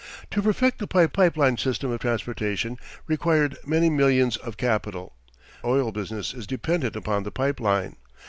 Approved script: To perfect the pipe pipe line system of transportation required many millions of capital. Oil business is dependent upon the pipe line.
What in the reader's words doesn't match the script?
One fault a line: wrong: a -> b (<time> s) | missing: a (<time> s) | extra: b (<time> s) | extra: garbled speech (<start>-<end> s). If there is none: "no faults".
no faults